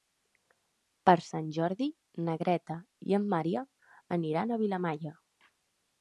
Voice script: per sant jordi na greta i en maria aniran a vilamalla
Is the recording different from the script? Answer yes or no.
no